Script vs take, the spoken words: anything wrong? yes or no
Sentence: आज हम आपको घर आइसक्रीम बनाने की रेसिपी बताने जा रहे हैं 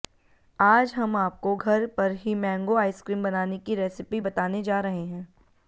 yes